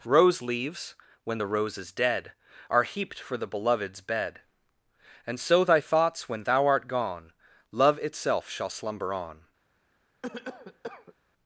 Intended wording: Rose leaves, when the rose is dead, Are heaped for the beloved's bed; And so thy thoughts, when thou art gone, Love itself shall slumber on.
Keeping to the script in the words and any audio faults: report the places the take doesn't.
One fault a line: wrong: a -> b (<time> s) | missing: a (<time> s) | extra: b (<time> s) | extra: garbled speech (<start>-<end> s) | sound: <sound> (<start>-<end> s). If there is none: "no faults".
sound: cough (10.2-11.1 s)